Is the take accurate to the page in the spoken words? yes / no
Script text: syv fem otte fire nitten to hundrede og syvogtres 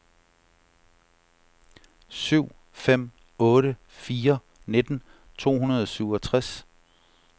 yes